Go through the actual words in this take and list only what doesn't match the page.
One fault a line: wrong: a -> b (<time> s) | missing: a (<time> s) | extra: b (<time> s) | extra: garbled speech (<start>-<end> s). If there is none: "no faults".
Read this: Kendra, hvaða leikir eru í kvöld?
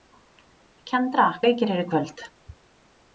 missing: hvaða (1.2 s)